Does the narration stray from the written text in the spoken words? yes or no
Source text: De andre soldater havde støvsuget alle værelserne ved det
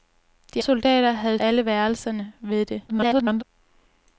yes